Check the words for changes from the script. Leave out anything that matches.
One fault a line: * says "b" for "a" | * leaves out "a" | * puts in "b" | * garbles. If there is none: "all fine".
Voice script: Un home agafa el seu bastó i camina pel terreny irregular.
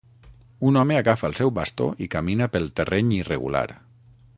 all fine